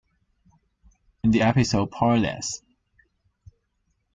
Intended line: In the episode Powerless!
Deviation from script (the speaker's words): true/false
false